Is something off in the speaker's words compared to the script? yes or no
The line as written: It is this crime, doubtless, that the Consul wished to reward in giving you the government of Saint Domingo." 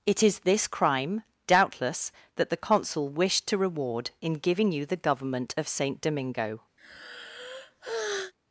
no